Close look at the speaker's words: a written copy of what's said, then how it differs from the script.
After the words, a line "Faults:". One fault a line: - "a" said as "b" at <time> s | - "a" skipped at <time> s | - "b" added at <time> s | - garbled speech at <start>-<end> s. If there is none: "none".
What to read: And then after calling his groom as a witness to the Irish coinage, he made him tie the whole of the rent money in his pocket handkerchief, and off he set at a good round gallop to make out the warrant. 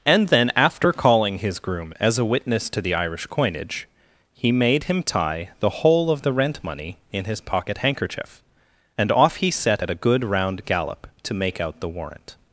And then after calling his groom as a witness to the Irish coinage, he made him tie the whole of the rent money in his pocket handkerchief, and off he set at a good round gallop to make out the warrant.
Faults:
none